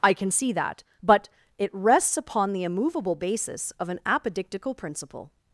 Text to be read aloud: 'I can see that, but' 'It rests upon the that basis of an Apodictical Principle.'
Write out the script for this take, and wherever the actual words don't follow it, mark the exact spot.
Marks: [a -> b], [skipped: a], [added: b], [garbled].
'I can see that, but' 'It rests upon the [that -> immovable] basis of an Apodictical Principle.'